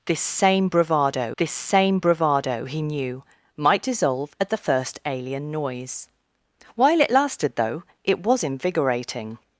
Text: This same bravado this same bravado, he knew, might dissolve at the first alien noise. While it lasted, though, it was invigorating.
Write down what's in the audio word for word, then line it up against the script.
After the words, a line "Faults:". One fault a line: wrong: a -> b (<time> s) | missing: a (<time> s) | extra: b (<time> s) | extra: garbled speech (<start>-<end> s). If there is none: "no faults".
This same bravado this same bravado, he knew, might dissolve at the first alien noise. While it lasted, though, it was invigorating.
Faults:
no faults